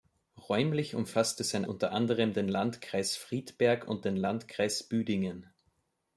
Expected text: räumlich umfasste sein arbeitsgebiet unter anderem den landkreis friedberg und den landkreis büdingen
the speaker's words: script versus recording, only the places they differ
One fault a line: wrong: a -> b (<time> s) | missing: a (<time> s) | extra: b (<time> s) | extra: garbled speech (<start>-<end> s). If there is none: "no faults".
missing: arbeitsgebiet (1.6 s)